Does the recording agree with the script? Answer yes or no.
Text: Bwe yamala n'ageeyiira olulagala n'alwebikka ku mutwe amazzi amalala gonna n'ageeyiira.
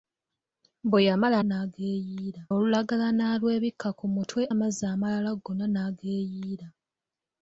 yes